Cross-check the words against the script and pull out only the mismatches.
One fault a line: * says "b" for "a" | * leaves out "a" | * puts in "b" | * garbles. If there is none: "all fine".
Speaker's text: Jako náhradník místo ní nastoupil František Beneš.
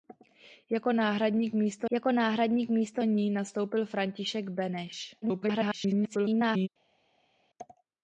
* puts in "jako náhradník místo"
* garbles